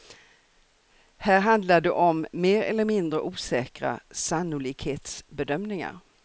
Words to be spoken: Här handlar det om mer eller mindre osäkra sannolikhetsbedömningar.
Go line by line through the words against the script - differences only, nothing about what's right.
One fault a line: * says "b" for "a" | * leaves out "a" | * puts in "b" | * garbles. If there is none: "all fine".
all fine